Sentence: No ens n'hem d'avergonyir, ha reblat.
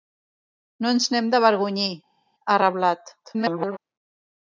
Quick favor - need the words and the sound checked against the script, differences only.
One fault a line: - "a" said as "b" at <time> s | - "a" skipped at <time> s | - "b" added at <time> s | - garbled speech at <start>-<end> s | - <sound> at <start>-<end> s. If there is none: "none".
- garbled speech at 3.2-3.8 s